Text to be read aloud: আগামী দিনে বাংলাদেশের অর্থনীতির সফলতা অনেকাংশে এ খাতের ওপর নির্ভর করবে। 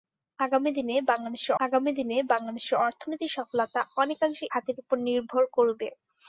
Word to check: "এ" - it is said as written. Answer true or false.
false